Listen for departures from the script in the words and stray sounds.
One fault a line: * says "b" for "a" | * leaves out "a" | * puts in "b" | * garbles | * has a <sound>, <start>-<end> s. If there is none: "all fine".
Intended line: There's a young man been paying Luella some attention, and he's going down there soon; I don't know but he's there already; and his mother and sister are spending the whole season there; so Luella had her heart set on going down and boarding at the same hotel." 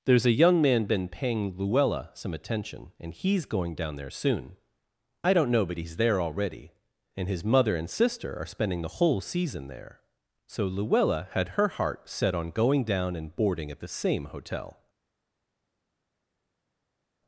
all fine